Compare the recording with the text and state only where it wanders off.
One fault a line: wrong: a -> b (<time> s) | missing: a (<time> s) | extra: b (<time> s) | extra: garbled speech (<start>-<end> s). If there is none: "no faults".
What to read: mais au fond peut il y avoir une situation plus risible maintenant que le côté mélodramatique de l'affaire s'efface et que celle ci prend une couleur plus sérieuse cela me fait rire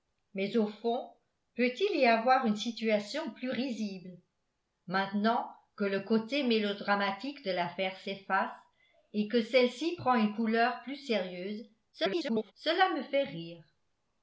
extra: garbled speech (11.9-12.5 s)